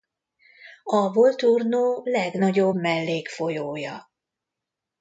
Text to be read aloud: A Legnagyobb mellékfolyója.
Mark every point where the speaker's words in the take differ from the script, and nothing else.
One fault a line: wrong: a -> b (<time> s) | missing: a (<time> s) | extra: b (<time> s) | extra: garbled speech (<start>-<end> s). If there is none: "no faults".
extra: Volturno (1.1 s)